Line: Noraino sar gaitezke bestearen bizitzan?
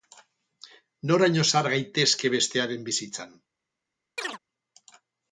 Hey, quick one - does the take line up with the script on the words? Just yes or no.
yes